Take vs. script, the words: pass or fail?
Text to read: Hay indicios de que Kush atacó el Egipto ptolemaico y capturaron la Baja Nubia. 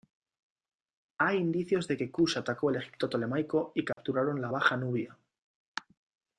pass